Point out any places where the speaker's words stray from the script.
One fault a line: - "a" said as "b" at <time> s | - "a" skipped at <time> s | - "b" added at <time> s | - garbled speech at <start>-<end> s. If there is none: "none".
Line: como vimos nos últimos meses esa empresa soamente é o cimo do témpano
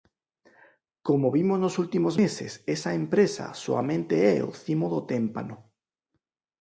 none